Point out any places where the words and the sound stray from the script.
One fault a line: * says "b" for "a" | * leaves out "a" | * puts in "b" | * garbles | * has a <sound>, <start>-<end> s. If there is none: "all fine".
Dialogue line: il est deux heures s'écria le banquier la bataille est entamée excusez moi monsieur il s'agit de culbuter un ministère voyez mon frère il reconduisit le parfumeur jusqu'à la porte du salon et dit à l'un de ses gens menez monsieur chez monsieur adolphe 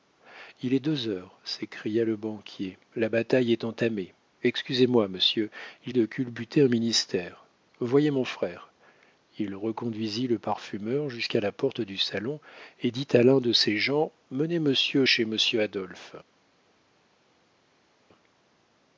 * leaves out "s'agit"